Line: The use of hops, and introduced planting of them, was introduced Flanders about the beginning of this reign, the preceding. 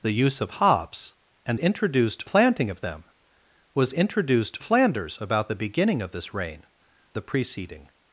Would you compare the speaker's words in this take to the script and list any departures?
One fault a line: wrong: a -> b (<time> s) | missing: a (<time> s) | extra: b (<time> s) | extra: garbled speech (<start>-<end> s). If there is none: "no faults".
no faults